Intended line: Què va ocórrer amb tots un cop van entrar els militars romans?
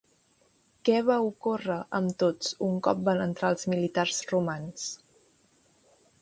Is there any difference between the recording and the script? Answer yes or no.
no